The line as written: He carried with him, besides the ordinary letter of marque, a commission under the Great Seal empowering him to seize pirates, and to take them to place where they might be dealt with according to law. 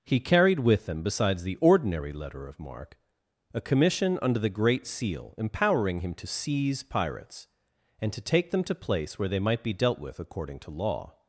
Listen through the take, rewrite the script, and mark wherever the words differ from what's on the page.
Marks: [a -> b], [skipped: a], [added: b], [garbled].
He carried with him, besides the ordinary letter of marque, a commission under the Great Seal empowering him to seize pirates, and to take them to place where they might be dealt with according to law.